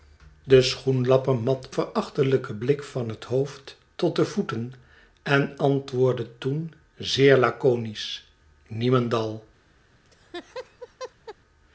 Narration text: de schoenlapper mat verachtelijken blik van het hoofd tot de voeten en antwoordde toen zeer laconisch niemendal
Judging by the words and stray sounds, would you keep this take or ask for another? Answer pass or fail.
fail